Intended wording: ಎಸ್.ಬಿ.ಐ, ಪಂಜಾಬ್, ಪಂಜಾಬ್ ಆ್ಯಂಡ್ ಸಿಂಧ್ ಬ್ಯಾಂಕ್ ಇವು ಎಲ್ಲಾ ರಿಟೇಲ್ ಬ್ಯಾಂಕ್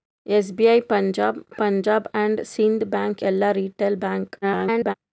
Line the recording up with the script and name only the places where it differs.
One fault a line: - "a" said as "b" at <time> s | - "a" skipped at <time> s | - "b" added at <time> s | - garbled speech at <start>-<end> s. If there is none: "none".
- "ಇವು" skipped at 3.2 s
- garbled speech at 4.4-4.9 s